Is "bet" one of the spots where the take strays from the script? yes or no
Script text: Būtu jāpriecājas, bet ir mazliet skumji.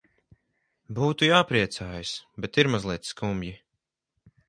no